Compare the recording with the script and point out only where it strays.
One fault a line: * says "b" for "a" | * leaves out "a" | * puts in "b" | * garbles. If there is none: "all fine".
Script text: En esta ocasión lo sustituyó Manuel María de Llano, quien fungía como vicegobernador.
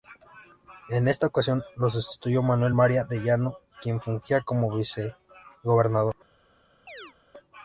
all fine